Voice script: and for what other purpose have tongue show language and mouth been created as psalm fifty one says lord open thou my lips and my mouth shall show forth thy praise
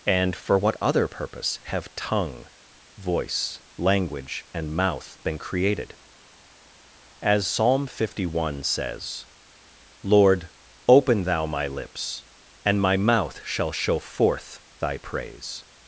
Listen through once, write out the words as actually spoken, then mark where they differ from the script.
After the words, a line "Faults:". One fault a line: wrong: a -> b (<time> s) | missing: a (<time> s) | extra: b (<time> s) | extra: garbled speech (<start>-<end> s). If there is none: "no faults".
and for what other purpose have tongue voice language and mouth been created as psalm fifty one says lord open thou my lips and my mouth shall show forth thy praise
Faults:
wrong: show -> voice (3.0 s)